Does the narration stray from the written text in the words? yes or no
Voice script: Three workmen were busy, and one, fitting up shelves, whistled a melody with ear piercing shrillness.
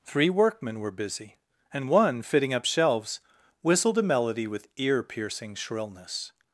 no